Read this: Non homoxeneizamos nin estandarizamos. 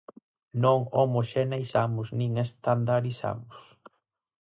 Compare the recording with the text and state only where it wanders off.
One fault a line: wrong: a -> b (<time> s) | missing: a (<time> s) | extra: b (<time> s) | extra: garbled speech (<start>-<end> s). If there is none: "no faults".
no faults